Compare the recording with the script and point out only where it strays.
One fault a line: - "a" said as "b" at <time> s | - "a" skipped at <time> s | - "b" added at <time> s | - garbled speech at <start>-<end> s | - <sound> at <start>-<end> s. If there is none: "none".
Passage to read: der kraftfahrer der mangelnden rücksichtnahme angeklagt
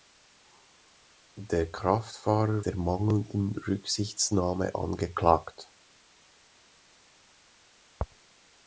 none